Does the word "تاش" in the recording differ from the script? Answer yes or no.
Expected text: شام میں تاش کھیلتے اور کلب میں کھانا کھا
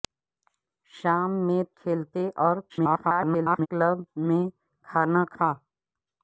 yes